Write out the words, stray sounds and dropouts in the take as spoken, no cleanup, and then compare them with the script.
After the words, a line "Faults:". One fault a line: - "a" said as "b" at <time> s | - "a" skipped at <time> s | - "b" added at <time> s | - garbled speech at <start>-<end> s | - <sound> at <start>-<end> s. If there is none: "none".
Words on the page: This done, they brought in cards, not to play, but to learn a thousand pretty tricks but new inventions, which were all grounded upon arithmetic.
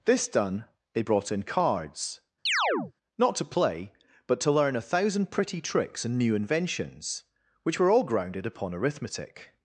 This done, they brought in cards, not to play, but to learn a thousand pretty tricks and new inventions, which were all grounded upon arithmetic.
Faults:
- chirp at 2.5-2.9 s
- "but" said as "and" at 6.0 s